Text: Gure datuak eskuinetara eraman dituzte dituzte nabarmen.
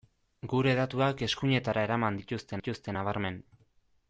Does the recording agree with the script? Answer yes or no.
yes